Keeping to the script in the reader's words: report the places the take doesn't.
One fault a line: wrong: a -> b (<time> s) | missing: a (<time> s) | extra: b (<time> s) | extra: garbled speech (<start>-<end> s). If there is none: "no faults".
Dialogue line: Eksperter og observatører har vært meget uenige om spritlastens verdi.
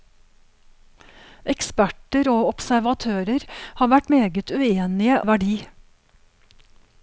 missing: om spritlastens (5.2 s)